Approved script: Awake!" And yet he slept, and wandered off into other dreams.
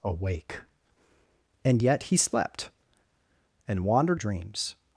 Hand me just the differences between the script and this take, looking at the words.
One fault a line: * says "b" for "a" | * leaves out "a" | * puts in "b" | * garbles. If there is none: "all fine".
* leaves out "off into other"